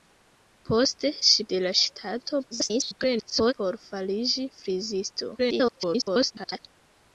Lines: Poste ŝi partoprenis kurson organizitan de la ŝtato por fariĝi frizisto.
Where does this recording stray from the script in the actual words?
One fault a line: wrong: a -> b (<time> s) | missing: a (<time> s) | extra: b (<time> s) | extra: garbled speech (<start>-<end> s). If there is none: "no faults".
missing: partoprenis kurson organizitan (1.4 s)
extra: garbled speech (2.5-3.5 s)
extra: garbled speech (5.4-6.6 s)